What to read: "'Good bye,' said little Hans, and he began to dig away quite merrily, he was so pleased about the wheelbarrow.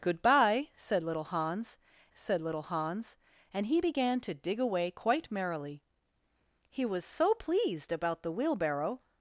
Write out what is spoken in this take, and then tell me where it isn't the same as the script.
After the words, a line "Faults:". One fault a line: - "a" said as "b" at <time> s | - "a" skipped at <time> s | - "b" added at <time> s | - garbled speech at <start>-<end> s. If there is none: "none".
"'Good bye,' said little Hans said little Hans, and he began to dig away quite merrily, he was so pleased about the wheelbarrow.
Faults:
- "said little Hans" added at 2.1 s